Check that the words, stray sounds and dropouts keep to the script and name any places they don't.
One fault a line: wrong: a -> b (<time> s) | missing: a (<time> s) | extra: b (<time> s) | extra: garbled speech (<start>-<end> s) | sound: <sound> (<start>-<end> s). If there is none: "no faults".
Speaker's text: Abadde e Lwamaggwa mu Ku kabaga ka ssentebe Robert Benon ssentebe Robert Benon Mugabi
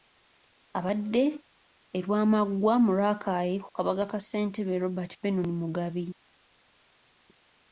extra: Rakai (3.0 s)
missing: ssentebe Robert Benon (5.5 s)